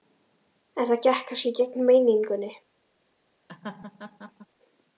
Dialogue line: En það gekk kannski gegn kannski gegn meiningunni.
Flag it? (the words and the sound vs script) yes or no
yes